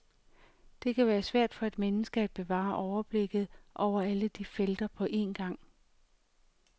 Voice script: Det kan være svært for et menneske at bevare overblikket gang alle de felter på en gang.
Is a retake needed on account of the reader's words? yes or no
yes